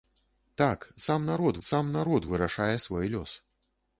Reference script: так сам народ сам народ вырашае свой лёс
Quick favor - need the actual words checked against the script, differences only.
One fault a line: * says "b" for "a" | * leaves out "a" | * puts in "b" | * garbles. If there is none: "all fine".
all fine